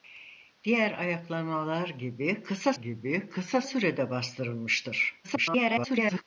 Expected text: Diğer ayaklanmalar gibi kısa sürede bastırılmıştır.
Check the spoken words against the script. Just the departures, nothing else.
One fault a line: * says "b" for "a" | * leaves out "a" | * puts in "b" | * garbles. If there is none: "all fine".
* puts in "gibi kısa"
* garbles